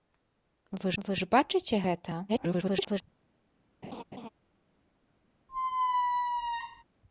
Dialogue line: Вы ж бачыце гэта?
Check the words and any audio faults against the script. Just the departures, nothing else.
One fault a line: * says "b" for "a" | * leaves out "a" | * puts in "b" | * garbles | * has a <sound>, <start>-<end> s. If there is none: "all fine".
* puts in "вы"
* garbles
* has a laugh, 3.8-4.3 s
* has a squeak, 5.5-6.8 s